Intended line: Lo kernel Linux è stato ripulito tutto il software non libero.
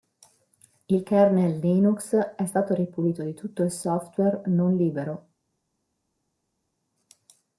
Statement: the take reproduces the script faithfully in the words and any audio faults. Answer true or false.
false